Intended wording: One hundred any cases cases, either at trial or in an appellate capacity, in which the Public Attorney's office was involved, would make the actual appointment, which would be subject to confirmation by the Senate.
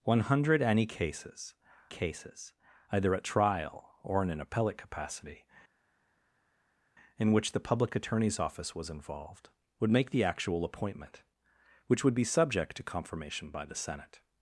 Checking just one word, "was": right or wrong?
right